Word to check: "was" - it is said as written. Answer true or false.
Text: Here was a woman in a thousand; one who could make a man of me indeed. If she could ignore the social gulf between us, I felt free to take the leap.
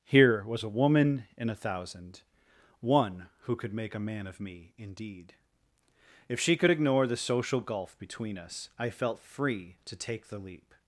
true